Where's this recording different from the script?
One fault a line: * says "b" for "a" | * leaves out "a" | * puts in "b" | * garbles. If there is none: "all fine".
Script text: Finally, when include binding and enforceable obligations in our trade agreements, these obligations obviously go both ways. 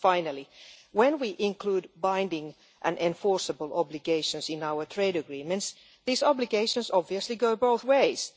* puts in "we"